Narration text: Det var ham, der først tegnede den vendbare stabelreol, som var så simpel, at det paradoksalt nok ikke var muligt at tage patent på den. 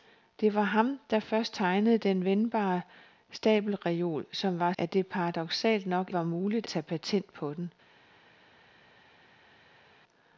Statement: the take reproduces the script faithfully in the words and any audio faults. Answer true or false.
false